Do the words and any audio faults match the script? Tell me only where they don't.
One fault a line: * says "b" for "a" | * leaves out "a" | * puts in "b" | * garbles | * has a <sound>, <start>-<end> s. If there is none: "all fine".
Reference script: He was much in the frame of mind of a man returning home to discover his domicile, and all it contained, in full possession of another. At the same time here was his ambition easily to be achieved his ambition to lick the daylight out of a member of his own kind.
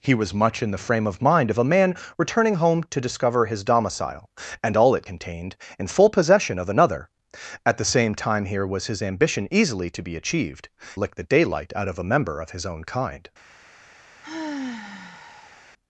* leaves out "his ambition to"
* has a sigh, 14.2-15.7 s